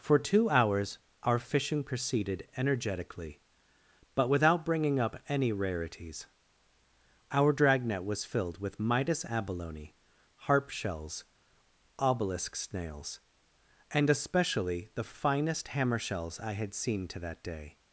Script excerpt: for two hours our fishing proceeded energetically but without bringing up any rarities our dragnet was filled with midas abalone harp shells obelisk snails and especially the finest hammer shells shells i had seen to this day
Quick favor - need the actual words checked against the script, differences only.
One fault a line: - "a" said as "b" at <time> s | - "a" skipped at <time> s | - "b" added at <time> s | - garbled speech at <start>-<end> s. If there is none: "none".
- "shells" skipped at 16.4 s
- "this" said as "that" at 17.2 s